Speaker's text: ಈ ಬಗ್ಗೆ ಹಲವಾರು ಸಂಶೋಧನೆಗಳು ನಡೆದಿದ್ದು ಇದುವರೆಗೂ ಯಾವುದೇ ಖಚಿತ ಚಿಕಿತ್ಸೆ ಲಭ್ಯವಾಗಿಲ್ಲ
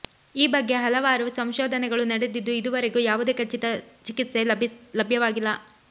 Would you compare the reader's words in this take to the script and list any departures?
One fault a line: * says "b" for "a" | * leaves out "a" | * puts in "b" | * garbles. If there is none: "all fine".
all fine